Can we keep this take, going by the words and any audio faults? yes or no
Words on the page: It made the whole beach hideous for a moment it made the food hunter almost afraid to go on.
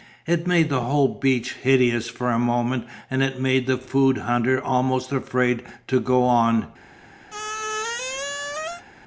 no